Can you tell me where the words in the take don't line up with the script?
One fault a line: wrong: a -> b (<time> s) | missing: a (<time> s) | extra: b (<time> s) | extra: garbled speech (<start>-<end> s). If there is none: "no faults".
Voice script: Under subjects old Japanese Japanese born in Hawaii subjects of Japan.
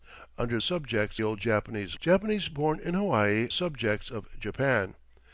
no faults